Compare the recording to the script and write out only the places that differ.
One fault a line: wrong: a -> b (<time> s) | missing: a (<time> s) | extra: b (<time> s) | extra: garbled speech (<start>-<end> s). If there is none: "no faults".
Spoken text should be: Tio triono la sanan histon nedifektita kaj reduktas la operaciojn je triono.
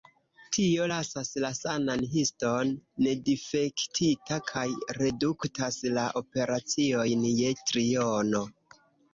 wrong: triono -> lasas (0.9 s)